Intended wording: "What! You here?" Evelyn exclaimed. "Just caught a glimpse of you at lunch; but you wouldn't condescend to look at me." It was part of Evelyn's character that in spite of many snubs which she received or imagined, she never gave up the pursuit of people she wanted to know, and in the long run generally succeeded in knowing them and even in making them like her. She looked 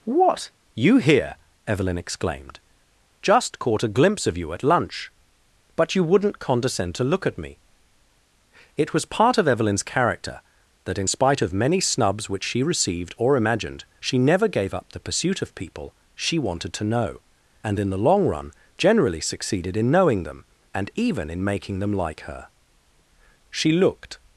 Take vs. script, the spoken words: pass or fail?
pass